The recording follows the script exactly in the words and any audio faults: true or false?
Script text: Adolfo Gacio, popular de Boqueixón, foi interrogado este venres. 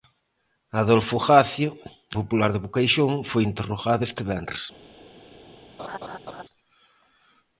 false